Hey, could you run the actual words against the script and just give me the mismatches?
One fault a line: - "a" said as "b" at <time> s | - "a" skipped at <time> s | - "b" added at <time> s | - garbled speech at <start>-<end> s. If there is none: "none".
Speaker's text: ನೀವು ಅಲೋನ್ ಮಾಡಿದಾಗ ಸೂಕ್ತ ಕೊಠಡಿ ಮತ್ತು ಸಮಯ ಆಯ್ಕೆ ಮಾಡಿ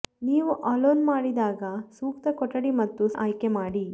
- "ಸಮಯ" skipped at 3.0 s